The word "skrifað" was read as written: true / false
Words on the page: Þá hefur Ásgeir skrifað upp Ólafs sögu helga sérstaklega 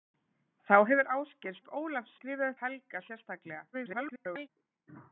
false